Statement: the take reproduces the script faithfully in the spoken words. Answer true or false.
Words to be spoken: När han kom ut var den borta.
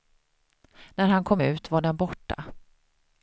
true